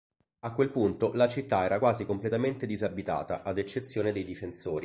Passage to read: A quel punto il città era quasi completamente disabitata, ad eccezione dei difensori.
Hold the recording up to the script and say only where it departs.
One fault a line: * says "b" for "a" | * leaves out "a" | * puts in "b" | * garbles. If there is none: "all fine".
* says "la" for "il"